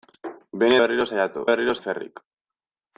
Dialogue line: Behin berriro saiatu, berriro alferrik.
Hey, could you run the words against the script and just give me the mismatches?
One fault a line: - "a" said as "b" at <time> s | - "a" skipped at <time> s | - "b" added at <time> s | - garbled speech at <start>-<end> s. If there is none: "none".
none